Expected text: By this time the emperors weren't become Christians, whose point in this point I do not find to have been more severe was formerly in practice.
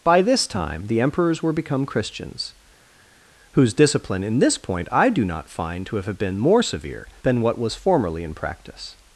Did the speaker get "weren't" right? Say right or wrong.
wrong